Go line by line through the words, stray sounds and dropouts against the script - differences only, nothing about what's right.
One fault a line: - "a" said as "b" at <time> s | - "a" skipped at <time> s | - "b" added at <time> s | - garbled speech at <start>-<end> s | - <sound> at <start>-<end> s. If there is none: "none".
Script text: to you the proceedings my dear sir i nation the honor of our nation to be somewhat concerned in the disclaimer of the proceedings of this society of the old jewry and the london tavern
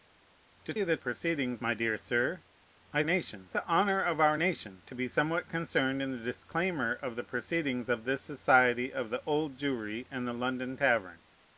none